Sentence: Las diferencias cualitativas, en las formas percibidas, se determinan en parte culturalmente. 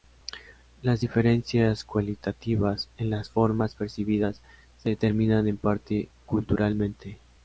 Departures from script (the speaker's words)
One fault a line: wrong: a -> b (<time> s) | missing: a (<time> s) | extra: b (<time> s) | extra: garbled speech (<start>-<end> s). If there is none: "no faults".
no faults